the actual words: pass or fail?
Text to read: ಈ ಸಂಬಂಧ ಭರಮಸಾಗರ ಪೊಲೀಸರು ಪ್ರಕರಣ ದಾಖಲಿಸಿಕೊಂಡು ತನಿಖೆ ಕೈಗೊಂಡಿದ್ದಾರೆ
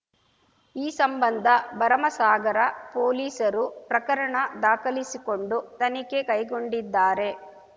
pass